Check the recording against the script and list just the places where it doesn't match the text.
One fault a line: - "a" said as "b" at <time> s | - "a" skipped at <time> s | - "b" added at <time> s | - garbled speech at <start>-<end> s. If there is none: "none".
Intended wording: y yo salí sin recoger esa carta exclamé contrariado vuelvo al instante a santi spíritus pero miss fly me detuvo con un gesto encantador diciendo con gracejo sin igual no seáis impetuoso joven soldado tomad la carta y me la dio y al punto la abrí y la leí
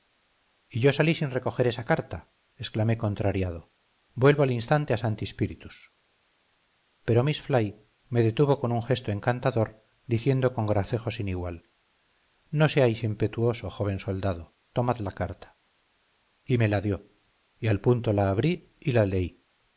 none